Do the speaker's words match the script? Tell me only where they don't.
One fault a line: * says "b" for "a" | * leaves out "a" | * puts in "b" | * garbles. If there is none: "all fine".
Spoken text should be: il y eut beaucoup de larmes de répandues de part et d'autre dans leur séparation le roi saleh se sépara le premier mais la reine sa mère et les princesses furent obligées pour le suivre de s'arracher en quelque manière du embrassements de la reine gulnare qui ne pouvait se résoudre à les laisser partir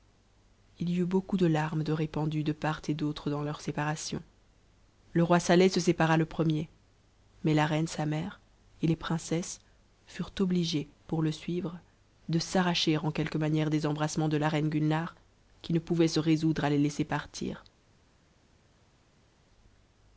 * says "des" for "du"